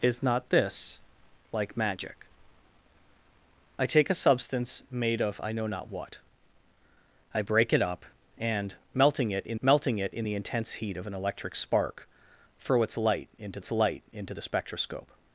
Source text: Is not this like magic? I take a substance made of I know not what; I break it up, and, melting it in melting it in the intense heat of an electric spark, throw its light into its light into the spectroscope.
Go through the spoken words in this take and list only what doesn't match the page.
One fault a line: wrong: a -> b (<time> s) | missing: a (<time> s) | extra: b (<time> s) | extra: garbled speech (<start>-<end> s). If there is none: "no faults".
no faults